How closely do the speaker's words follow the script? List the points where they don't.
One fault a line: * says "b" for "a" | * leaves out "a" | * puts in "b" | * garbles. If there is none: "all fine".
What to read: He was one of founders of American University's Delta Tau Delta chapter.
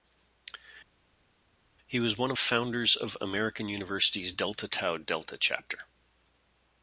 all fine